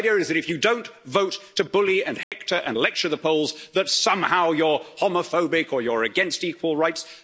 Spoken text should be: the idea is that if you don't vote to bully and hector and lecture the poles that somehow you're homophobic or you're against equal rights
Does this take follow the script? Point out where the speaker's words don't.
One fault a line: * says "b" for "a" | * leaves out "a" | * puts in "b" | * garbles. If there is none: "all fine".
all fine